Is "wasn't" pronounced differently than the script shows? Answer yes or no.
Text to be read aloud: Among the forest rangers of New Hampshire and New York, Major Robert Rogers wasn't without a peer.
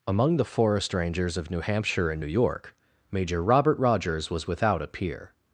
yes